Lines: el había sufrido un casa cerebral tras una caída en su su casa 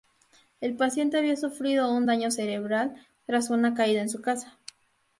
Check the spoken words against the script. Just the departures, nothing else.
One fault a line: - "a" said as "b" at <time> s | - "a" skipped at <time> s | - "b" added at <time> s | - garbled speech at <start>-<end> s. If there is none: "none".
- "paciente" added at 0.8 s
- "casa" said as "daño" at 2.1 s
- "su" skipped at 4.2 s